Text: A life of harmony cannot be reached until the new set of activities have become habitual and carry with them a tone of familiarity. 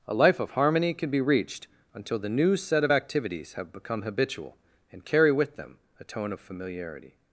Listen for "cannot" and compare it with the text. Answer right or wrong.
wrong